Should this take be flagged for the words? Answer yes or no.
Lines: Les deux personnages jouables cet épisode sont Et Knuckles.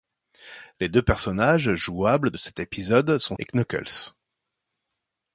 no